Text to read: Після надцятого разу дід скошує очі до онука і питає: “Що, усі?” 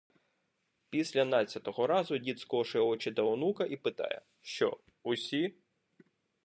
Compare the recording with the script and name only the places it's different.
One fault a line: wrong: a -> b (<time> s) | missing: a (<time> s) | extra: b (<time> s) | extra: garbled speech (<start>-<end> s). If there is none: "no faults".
no faults